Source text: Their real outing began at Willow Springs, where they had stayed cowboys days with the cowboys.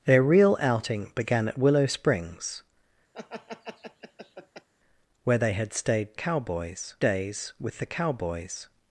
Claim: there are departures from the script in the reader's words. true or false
false